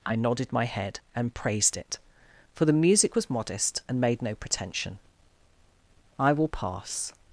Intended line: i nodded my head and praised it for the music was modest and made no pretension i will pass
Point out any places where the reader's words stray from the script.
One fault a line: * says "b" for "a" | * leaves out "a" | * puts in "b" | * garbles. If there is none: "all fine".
all fine